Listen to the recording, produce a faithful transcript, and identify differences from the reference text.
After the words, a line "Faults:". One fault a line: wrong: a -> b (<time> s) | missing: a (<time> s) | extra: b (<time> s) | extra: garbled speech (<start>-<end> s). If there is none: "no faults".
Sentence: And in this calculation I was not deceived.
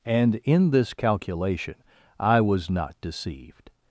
And in this calculation I was not deceived.
Faults:
no faults